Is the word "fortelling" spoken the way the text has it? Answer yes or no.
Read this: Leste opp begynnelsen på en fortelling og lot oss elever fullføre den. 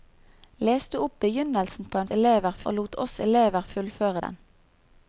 no